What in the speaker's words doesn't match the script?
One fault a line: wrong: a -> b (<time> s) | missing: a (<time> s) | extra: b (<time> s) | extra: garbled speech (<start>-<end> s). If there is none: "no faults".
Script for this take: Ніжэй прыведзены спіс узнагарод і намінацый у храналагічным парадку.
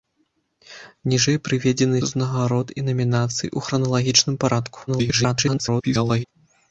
missing: спіс (2.0 s)
extra: garbled speech (4.9-6.2 s)